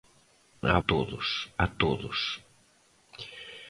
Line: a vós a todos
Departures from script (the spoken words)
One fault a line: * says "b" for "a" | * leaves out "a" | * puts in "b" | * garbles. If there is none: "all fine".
* says "todos" for "vós"